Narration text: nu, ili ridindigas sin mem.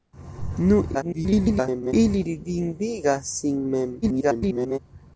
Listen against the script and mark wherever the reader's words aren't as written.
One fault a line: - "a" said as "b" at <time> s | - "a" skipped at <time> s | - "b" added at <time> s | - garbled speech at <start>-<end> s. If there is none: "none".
- garbled speech at 0.9-1.9 s
- garbled speech at 4.0-4.8 s